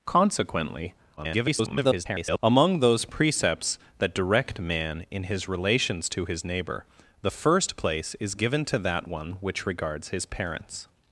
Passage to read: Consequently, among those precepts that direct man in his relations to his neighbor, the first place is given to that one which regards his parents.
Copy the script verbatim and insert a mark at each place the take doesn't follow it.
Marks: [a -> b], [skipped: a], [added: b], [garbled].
Consequently, [garbled] among those precepts that direct man in his relations to his neighbor, the first place is given to that one which regards his parents.